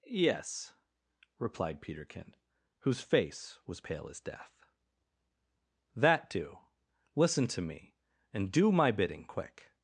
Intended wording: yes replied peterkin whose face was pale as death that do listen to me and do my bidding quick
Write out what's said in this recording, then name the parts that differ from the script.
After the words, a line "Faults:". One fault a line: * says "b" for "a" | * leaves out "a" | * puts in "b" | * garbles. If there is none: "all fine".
yes replied peterkin whose face was pale as death that do listen to me and do my bidding quick
Faults:
all fine